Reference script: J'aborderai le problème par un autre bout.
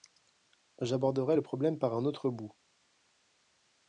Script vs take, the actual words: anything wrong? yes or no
no